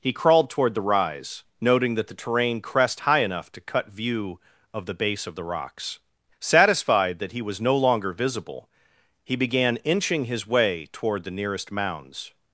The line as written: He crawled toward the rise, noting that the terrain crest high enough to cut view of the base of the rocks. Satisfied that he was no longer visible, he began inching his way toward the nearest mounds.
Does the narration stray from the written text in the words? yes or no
no